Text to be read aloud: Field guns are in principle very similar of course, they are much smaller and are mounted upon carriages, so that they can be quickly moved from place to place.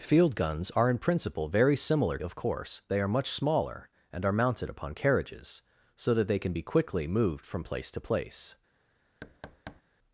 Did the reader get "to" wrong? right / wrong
right